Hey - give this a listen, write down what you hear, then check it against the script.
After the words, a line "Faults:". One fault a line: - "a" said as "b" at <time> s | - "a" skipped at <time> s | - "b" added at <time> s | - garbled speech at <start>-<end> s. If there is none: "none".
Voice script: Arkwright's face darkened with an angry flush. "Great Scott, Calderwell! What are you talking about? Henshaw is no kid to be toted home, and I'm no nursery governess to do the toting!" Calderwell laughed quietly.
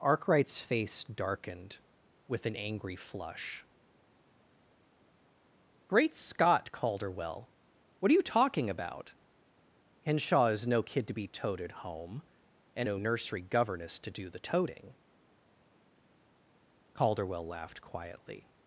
Arkwright's face darkened with an angry flush. "Great Scott, Calderwell! What are you talking about? Henshaw is no kid to be toted home, and No nursery governess to do the toting!" Calderwell laughed quietly.
Faults:
- "I'm" skipped at 12.9 s